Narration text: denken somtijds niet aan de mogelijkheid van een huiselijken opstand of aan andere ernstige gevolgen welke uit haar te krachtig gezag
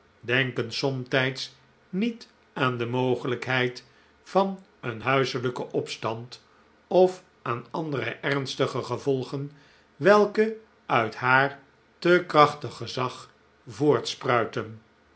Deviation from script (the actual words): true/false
false